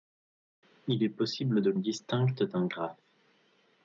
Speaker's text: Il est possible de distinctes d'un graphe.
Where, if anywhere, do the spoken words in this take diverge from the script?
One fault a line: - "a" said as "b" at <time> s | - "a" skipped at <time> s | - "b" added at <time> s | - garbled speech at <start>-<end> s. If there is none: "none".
none